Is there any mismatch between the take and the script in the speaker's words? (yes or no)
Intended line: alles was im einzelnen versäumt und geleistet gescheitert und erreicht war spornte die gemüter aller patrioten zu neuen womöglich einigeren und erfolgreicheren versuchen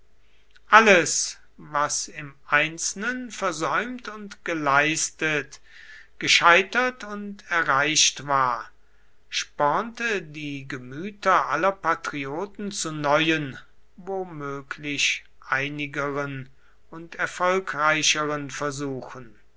no